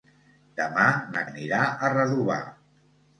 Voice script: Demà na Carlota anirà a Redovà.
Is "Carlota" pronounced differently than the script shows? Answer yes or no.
yes